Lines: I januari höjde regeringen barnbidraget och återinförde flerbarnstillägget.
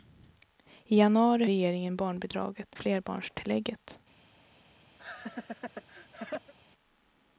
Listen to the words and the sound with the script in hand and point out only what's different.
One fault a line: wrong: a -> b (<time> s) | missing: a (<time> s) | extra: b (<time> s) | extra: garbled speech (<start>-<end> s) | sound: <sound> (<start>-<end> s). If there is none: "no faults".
missing: höjde (1.4 s)
missing: och återinförde (2.8 s)
sound: laugh (5.0-6.5 s)